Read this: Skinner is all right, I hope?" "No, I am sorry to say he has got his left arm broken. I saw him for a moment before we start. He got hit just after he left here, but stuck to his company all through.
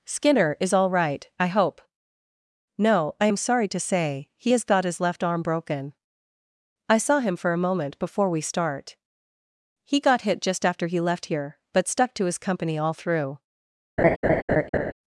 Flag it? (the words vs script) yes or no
no